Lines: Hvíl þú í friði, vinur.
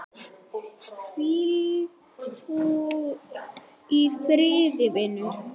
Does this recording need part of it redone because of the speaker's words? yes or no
no